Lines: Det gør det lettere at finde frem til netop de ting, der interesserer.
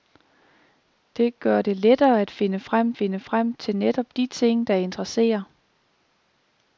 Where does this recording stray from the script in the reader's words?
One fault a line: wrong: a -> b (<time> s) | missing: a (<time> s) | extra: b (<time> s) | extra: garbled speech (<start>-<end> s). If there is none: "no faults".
extra: finde frem (2.9 s)